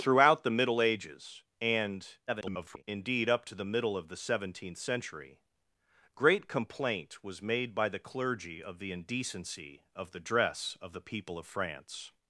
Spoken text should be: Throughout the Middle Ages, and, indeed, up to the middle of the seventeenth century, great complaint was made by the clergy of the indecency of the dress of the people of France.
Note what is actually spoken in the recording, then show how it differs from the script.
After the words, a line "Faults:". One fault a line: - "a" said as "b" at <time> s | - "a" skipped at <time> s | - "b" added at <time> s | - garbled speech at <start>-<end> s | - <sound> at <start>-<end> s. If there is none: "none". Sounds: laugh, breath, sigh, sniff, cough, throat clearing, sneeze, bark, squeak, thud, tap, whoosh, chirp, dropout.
Throughout the Middle Ages, and, [garbled] indeed, up to the middle of the seventeenth century, great complaint was made by the clergy of the indecency of the dress of the people of France.
Faults:
- garbled speech at 2.3-2.8 s